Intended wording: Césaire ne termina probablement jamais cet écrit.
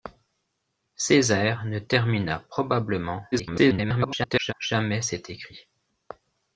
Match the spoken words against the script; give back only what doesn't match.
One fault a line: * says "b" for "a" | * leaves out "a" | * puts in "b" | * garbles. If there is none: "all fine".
* garbles